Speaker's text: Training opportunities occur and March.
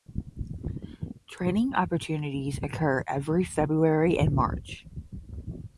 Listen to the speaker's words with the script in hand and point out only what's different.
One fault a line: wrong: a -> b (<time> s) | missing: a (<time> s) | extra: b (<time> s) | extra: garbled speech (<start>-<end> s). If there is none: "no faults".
extra: every February (3.0 s)